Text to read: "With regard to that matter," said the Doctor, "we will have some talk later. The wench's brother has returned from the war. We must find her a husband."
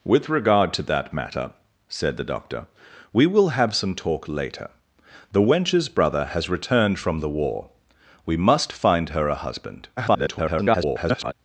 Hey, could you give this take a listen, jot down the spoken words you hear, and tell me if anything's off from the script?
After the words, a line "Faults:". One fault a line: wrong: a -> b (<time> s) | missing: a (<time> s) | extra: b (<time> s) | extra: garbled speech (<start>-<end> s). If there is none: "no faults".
"With regard to that matter," said the Doctor, "we will have some talk later. The wench's brother has returned from the war. We must find her a husband." [garbled]
Faults:
extra: garbled speech (10.0-11.3 s)